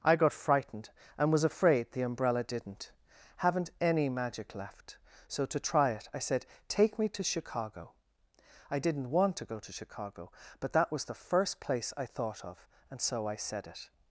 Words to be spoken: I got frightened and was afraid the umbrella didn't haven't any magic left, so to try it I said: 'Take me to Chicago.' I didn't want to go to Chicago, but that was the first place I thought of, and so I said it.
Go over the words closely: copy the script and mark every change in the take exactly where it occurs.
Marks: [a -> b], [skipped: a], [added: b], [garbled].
I got frightened and was afraid the umbrella didn't haven't any magic left, so to try it I said: 'Take me to Chicago.' I didn't want to go to Chicago, but that was the first place I thought of, and so I said it.